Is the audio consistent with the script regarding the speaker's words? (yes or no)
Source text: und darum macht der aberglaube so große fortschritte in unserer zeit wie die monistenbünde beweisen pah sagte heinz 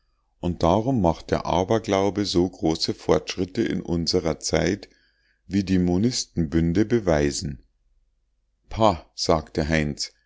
yes